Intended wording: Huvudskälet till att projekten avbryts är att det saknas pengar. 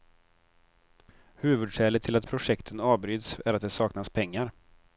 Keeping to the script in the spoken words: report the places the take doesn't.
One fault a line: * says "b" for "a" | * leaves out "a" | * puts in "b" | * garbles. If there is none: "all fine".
all fine